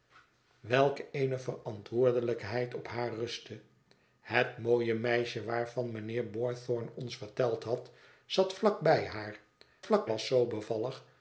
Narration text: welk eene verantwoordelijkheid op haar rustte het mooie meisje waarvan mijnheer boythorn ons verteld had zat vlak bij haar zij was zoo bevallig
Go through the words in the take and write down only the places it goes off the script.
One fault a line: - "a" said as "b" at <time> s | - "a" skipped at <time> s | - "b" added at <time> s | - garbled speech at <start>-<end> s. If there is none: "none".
- "zij" said as "vlak" at 9.8 s